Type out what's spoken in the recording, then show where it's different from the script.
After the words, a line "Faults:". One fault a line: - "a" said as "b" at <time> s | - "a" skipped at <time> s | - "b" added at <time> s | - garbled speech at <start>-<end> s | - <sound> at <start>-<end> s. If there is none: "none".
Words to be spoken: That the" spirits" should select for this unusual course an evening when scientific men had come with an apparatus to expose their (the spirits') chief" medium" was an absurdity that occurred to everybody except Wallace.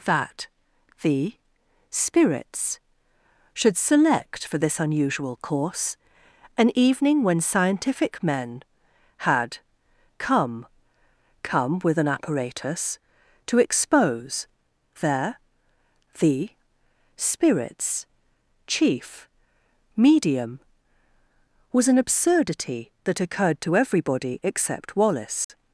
That the" spirits" should select for this unusual course an evening when scientific men had come come with an apparatus to expose their (the spirits') chief" medium" was an absurdity that occurred to everybody except Wallace.
Faults:
- "come" added at 11.4 s
- dropout at 25.4-25.5 s